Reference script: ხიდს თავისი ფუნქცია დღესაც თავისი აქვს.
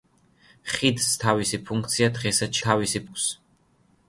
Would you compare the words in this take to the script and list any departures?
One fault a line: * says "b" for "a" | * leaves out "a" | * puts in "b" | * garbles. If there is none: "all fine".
all fine